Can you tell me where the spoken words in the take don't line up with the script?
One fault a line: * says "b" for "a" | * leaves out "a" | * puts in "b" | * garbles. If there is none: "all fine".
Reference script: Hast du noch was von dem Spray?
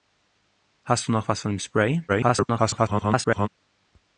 * garbles